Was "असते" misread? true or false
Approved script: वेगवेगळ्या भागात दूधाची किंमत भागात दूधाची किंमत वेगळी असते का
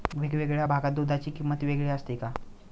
false